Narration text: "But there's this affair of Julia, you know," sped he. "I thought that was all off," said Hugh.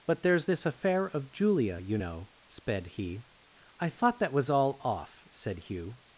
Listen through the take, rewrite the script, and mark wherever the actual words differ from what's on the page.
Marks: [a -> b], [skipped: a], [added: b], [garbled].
"But there's this affair of Julia, you know," sped he. "I thought that was all off," said Hugh.